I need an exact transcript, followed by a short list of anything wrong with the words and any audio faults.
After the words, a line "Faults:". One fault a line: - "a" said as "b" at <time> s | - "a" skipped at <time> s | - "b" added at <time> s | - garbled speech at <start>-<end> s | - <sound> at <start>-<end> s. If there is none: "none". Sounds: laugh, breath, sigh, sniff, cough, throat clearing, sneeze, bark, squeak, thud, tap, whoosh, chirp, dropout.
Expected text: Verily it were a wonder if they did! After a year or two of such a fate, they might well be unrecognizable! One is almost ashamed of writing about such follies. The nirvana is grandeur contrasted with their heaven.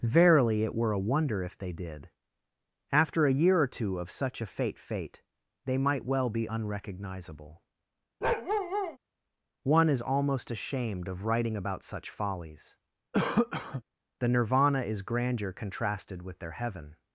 Verily it were a wonder if they did! After a year or two of such a fate fate, they might well be unrecognizable! One is almost ashamed of writing about such follies. The nirvana is grandeur contrasted with their heaven.
Faults:
- "fate" added at 4.8 s
- bark at 8.2-9.0 s
- cough at 13.1-13.8 s